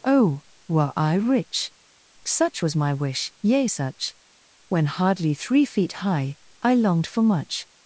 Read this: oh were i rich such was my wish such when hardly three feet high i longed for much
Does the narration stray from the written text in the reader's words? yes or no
yes